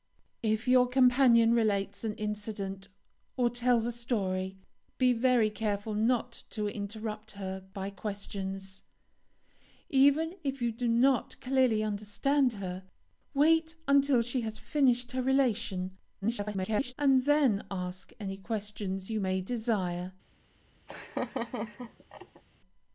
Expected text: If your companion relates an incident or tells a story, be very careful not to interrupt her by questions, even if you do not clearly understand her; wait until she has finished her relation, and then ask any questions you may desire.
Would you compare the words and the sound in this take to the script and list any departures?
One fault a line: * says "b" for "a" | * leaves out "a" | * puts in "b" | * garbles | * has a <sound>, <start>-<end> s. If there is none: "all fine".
* garbles
* has a laugh, 20.9-22.4 s